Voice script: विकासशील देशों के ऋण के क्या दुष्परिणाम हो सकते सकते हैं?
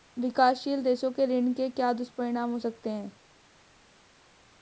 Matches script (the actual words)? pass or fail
fail